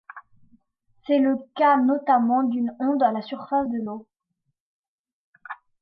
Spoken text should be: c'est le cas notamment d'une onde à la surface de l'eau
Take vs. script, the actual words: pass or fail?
pass